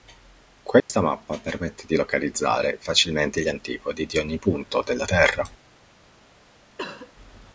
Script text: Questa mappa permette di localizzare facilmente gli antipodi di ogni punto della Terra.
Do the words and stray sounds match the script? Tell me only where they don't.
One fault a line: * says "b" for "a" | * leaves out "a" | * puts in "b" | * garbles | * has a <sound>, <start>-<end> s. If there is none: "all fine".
* has a dropout, 0.8-0.9 s
* has a cough, 6.8-7.1 s